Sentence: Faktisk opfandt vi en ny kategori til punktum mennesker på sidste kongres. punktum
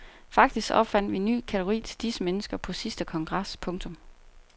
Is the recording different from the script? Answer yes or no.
yes